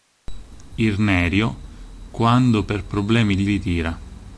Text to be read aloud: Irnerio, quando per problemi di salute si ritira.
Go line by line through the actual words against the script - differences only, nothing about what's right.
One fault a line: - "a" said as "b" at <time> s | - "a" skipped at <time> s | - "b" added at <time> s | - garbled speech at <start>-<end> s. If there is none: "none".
- "salute si" skipped at 3.5 s